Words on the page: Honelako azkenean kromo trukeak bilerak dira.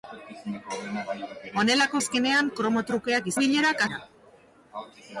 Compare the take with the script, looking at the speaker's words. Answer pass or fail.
pass